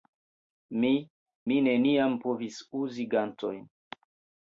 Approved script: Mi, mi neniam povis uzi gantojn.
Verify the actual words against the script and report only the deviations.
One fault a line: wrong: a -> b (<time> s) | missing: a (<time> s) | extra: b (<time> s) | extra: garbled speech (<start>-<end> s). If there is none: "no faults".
no faults